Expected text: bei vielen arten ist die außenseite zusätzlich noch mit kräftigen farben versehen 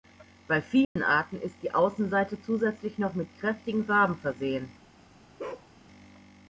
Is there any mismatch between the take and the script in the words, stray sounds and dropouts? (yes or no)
yes